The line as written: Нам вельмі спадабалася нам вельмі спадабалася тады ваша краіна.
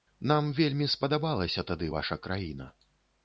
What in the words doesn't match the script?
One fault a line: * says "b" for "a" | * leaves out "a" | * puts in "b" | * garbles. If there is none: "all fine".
* leaves out "нам вельмі спадабалася"